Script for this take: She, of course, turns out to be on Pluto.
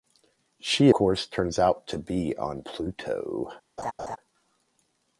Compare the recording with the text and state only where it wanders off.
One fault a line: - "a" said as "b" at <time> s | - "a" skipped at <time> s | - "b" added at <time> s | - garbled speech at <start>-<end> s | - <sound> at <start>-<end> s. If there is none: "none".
- "of" skipped at 0.9 s
- laugh at 3.8-4.2 s